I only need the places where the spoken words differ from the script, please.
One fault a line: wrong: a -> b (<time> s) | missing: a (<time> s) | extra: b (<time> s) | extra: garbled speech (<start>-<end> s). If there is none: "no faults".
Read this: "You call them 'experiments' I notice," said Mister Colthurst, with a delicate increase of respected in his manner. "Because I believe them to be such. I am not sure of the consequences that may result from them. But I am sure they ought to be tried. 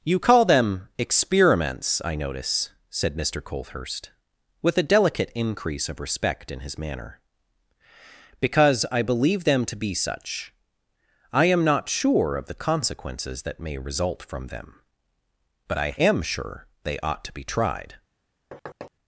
wrong: respected -> respect (6.0 s)